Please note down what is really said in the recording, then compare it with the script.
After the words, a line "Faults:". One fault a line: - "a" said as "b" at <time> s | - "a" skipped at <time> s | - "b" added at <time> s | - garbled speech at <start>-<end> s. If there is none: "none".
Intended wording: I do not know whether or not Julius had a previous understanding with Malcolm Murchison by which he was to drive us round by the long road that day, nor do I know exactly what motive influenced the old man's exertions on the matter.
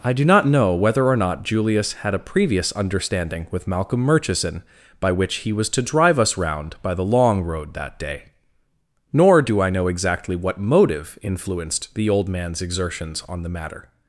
I do not know whether or not Julius had a previous understanding with Malcolm Murchison by which he was to drive us round by the long road that day, nor do I know exactly what motive influenced the old man's exertions on the matter.
Faults:
none